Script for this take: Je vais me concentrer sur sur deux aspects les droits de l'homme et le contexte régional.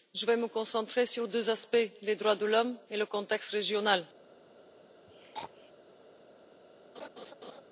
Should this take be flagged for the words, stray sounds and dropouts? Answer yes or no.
yes